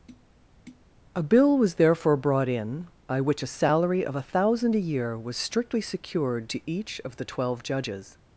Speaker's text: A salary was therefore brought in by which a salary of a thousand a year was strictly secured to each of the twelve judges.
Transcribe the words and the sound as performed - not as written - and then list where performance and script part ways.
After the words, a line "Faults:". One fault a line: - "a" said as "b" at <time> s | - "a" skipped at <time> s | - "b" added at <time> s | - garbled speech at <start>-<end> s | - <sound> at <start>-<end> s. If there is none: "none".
A bill was therefore brought in by which a salary of a thousand a year was strictly secured to each of the twelve judges.
Faults:
- tap at 0.1-0.9 s
- "salary" said as "bill" at 1.2 s